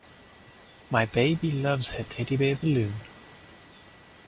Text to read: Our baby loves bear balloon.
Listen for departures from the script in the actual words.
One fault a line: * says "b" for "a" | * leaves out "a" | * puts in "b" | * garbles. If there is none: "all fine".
* says "My" for "Our"
* puts in "her teddy"